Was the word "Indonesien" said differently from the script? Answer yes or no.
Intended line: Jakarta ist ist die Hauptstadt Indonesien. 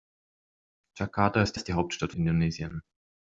no